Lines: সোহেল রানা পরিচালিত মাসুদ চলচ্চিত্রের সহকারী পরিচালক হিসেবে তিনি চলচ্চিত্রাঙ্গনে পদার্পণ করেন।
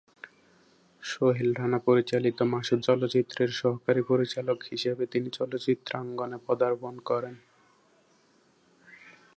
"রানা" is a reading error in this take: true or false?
false